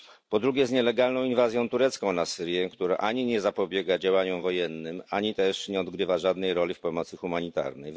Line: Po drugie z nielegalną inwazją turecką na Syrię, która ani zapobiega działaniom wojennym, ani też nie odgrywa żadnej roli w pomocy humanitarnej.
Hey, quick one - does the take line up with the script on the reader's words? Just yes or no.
no